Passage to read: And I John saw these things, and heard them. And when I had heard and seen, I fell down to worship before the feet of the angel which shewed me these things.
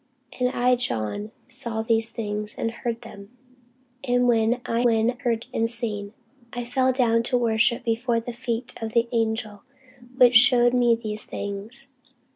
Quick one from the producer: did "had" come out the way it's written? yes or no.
no